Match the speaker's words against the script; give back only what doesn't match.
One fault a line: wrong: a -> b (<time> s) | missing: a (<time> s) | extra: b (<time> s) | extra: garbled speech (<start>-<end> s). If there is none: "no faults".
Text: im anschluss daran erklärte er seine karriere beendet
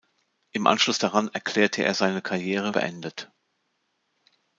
no faults